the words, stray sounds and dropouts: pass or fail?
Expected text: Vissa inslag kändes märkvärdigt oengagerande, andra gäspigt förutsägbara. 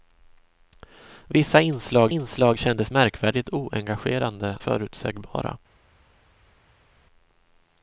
fail